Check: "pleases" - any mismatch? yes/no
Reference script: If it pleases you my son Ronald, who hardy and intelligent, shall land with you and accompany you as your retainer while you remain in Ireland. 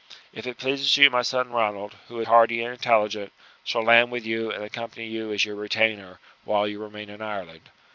no